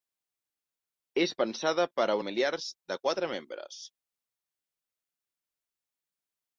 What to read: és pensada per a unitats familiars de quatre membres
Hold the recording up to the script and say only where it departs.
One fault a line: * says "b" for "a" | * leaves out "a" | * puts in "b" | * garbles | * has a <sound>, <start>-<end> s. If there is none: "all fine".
* leaves out "unitats"